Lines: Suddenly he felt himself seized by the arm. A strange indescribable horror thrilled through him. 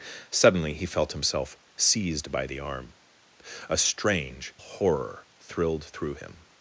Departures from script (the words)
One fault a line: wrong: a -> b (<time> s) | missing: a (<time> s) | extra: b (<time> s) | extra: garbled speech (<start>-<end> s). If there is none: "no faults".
missing: indescribable (4.5 s)